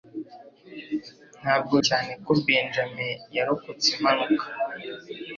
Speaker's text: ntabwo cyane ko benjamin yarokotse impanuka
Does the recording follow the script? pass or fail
pass